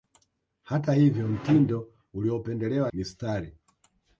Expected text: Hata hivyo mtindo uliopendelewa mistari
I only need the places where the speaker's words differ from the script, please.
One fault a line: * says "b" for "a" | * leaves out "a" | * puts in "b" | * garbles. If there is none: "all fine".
all fine